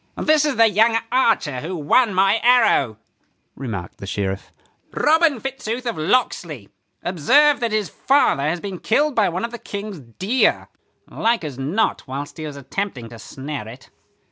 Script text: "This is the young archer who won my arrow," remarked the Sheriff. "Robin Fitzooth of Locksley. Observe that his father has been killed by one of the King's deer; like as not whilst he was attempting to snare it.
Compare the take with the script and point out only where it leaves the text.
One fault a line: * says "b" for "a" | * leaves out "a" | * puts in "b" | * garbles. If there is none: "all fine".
all fine